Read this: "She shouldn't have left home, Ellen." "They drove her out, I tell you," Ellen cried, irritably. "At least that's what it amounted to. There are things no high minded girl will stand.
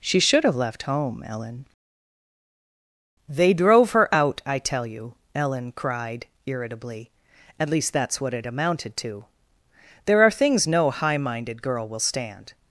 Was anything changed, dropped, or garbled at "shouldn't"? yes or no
yes